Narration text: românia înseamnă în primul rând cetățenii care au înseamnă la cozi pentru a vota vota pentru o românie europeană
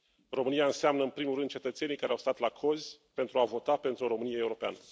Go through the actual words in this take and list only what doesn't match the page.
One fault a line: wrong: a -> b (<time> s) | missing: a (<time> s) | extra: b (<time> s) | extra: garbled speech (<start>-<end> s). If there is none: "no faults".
wrong: înseamnă -> stat (2.2 s)
missing: vota (3.8 s)